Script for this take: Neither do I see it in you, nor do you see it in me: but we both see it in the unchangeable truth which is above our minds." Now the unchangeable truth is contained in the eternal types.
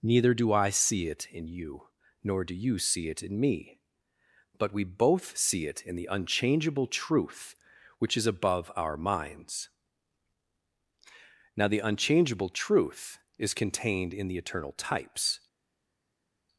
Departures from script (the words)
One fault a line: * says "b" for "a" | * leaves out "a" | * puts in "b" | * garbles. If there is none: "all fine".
all fine